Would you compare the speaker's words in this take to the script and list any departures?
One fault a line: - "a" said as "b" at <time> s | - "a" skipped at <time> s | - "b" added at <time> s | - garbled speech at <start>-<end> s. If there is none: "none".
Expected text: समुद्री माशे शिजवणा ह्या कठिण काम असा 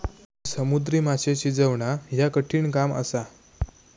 none